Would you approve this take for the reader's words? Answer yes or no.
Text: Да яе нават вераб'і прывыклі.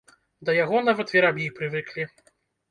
no